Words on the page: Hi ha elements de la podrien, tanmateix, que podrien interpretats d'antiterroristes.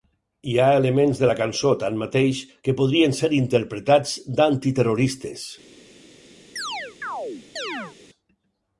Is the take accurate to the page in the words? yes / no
no